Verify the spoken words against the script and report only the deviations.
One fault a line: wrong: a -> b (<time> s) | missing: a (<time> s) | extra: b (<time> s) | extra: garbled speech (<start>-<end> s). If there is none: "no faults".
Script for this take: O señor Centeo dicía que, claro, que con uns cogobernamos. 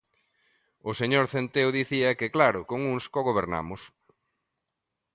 missing: que (2.6 s)